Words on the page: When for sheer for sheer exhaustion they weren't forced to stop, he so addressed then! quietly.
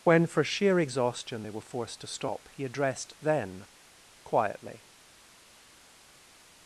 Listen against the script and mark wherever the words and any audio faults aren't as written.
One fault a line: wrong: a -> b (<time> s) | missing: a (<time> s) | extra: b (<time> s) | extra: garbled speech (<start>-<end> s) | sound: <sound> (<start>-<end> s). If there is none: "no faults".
missing: for sheer (0.8 s)
wrong: weren't -> were (1.5 s)
missing: so (2.6 s)